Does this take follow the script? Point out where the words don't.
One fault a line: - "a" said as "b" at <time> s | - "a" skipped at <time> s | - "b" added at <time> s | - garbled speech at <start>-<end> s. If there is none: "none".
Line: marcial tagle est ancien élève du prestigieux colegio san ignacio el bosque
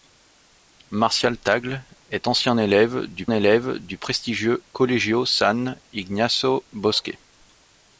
- "élève du" added at 3.3 s
- "el" skipped at 6.6 s